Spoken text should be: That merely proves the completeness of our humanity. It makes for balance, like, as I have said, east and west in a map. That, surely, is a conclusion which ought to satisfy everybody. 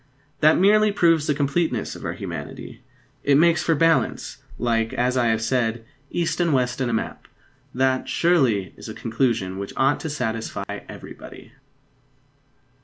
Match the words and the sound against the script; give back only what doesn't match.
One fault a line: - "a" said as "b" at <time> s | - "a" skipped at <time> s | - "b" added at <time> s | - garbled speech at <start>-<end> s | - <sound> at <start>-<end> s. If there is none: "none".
- dropout at 10.6-10.7 s